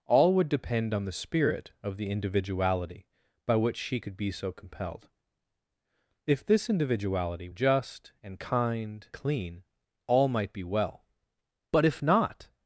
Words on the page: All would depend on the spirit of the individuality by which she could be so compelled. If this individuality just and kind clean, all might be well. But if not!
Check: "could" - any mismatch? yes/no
no